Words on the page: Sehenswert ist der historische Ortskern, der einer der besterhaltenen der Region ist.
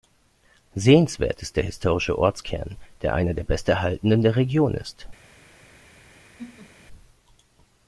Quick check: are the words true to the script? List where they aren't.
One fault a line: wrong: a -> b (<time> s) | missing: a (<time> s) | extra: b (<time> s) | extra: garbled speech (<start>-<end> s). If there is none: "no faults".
no faults